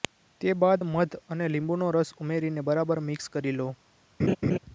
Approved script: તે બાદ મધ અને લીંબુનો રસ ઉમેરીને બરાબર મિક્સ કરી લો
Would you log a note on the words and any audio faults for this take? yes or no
yes